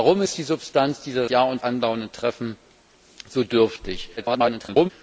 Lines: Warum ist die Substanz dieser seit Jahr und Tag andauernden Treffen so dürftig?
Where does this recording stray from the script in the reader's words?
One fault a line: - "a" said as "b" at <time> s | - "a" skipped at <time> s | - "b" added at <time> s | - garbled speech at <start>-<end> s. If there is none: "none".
- "seit" skipped at 1.3 s
- "Tag" skipped at 1.6 s
- garbled speech at 4.2-4.9 s